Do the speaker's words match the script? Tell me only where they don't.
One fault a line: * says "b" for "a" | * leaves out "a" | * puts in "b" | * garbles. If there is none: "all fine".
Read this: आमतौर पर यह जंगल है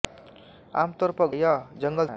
all fine